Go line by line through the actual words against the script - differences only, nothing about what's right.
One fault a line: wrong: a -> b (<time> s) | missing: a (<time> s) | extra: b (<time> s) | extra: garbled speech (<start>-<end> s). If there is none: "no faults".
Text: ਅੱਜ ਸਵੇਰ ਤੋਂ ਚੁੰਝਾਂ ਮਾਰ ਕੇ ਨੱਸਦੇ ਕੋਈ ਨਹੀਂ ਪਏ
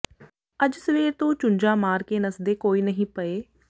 no faults